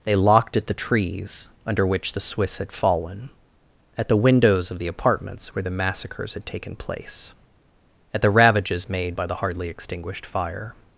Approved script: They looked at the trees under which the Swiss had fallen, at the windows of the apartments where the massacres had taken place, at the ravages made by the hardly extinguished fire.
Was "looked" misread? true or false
true